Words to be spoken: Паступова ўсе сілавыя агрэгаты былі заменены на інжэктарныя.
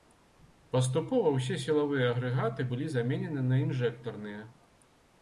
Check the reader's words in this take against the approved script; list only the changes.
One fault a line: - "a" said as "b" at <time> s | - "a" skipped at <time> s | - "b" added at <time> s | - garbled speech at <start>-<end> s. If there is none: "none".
none